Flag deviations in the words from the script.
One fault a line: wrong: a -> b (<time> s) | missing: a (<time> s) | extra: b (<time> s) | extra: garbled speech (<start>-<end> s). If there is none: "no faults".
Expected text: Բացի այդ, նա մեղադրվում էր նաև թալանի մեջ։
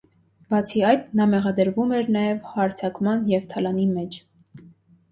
extra: հարձակման և (2.6 s)